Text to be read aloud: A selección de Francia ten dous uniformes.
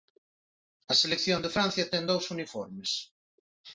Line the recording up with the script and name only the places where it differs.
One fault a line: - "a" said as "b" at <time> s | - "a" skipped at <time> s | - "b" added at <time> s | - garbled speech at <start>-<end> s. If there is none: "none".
none